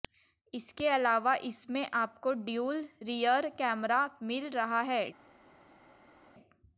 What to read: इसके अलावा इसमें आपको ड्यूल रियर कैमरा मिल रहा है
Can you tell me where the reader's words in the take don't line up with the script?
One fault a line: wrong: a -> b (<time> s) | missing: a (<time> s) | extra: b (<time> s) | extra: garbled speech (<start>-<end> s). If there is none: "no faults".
no faults